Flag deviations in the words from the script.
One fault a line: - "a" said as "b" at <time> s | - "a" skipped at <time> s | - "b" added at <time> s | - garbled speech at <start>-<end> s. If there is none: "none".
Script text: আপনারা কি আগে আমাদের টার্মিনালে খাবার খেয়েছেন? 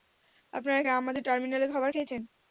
- "কি" skipped at 0.8 s